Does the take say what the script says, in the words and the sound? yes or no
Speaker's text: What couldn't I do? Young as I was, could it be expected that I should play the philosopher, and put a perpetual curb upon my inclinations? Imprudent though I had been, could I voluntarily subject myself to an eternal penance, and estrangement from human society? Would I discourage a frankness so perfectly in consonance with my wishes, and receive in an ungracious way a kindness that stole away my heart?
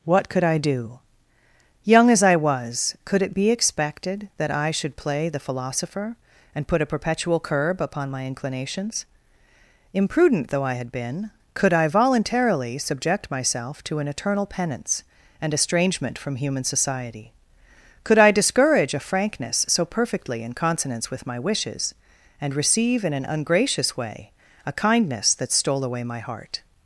no